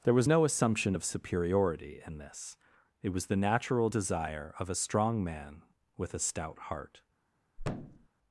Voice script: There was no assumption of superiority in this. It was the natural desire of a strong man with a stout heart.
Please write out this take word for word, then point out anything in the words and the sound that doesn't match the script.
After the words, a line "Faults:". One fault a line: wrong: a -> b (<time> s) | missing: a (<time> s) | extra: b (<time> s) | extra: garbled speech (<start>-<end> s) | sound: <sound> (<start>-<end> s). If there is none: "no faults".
There was no assumption of superiority in this. It was the natural desire of a strong man with a stout heart.
Faults:
sound: thud (7.6-8.1 s)